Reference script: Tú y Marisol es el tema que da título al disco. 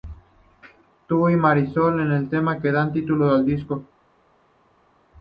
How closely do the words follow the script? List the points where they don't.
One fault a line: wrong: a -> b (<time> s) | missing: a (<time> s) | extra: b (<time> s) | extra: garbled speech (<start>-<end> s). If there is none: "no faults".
no faults